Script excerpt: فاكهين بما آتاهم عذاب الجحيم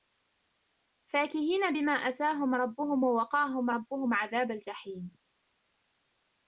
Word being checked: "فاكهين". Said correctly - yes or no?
yes